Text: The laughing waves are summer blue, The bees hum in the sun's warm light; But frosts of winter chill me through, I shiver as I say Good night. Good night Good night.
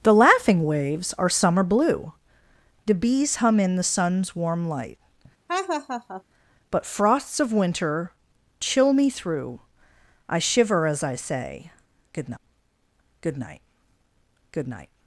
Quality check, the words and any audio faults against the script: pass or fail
fail